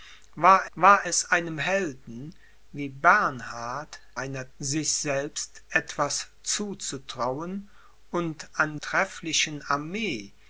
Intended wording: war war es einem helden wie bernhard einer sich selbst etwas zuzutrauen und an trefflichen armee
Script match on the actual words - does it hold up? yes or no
yes